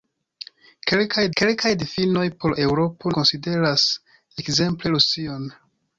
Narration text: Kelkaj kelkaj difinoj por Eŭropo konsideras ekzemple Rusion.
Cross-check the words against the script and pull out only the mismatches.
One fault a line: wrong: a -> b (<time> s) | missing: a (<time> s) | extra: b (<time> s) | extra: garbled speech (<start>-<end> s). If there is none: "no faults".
no faults